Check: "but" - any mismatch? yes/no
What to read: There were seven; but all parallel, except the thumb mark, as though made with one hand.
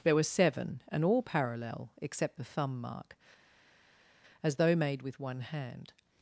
yes